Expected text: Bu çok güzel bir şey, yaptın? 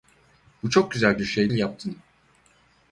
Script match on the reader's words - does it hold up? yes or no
yes